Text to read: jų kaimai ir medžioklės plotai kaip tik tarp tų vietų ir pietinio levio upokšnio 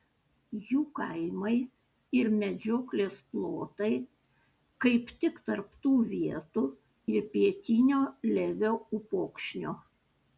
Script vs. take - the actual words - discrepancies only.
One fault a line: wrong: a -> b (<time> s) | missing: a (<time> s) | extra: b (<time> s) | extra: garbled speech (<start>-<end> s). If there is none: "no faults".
no faults